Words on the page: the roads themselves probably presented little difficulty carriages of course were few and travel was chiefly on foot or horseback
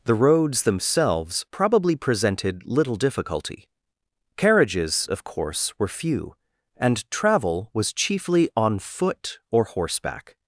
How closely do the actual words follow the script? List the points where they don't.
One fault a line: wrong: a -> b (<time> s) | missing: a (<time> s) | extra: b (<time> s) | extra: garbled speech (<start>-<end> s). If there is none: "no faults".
no faults